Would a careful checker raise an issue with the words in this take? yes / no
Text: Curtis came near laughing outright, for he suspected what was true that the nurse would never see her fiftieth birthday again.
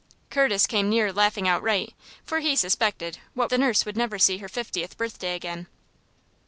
yes